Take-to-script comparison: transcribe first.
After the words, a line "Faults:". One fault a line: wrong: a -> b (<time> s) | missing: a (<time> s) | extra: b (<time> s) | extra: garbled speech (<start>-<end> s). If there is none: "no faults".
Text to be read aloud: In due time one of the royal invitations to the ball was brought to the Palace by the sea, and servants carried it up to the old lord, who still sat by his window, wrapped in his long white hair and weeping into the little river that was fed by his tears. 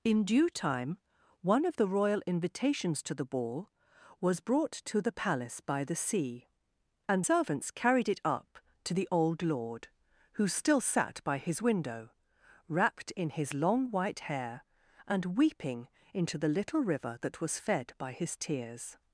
In due time one of the royal invitations to the ball was brought to the Palace by the sea, and servants carried it up to the old lord, who still sat by his window, wrapped in his long white hair and weeping into the little river that was fed by his tears.
Faults:
no faults